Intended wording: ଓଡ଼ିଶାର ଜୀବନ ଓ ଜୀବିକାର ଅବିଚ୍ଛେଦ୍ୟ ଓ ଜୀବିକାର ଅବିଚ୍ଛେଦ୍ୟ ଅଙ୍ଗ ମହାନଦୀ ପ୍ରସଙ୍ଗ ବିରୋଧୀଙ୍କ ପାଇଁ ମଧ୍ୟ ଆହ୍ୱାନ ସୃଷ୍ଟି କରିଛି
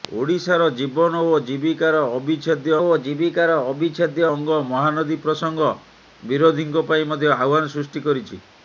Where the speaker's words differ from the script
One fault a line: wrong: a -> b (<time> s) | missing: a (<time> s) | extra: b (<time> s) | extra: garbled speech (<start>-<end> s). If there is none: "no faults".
no faults